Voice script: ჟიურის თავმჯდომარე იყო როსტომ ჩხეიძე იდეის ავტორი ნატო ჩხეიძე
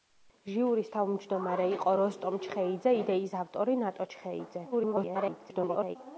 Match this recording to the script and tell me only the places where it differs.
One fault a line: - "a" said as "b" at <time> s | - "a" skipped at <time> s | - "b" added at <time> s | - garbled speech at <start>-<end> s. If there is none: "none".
- garbled speech at 4.7-6.0 s